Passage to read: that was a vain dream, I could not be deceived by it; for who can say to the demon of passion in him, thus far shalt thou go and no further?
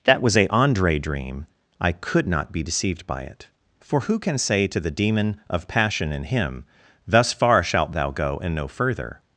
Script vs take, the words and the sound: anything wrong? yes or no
yes